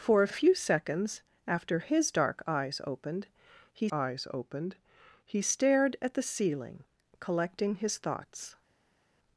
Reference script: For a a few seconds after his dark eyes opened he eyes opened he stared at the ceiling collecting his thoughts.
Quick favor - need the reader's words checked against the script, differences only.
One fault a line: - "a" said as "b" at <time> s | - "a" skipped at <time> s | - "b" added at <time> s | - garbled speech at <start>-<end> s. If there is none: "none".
none